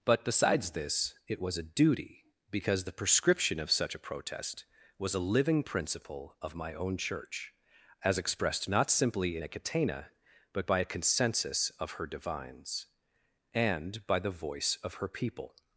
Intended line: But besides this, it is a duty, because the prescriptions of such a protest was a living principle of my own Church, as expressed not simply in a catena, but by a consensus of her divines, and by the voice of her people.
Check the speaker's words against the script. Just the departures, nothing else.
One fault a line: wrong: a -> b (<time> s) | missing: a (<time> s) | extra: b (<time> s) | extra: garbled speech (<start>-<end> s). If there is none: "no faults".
wrong: is -> was (1.4 s)
wrong: prescriptions -> prescription (2.9 s)